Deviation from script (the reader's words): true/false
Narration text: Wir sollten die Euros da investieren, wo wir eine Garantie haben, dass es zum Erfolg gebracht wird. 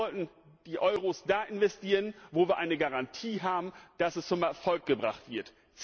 false